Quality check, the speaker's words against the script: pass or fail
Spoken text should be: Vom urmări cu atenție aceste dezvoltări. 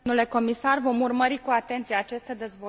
pass